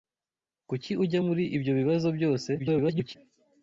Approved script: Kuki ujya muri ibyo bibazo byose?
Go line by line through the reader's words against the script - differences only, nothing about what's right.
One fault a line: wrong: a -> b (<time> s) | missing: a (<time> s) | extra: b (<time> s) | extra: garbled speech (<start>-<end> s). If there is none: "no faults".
extra: garbled speech (2.6-3.2 s)